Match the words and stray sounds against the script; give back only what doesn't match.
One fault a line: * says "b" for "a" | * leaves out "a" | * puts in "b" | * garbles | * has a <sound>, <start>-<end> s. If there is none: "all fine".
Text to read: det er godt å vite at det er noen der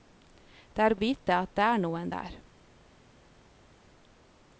* leaves out "godt"